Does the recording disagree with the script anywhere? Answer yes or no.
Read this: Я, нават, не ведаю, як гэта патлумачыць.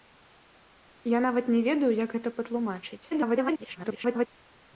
yes